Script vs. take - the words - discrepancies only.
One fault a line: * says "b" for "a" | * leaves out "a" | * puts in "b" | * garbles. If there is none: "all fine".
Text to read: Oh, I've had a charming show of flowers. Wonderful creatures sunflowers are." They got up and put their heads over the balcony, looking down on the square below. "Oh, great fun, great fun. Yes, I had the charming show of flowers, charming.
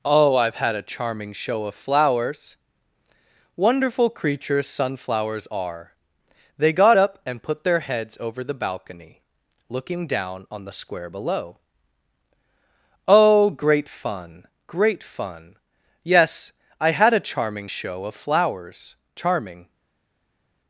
* says "a" for "the"